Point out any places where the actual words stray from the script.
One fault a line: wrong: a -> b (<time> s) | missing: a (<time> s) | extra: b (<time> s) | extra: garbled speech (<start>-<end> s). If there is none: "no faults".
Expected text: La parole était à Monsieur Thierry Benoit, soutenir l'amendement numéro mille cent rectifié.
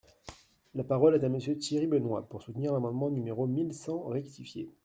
wrong: était -> est (1.1 s)
extra: pour (2.3 s)